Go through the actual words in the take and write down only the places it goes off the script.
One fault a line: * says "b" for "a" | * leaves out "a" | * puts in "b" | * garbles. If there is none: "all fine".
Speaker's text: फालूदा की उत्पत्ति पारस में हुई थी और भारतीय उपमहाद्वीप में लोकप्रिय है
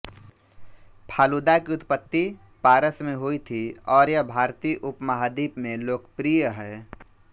* puts in "यह"